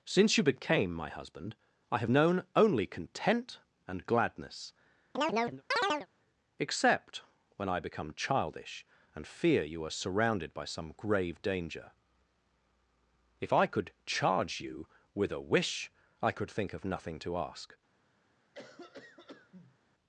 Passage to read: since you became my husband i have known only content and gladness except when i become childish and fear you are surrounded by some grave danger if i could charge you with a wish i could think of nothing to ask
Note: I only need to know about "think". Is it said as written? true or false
true